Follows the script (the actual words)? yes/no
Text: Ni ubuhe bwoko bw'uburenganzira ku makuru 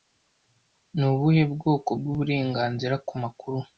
yes